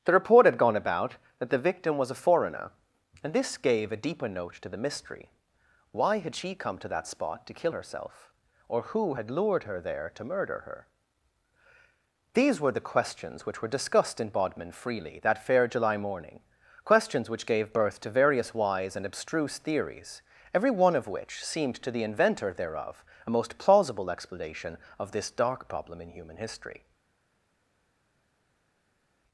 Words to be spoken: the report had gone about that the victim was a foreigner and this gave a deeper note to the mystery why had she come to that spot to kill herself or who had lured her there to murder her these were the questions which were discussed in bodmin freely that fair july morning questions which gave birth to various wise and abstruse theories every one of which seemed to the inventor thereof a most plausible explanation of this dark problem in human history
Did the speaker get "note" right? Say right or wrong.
right